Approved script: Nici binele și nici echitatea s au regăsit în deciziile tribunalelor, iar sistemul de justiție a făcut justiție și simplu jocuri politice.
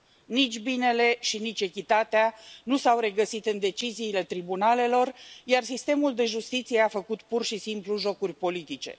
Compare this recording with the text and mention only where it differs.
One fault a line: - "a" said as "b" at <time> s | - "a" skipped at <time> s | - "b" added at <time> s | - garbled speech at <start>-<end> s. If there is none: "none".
- "nu" added at 2.6 s
- "justiție" said as "pur" at 7.2 s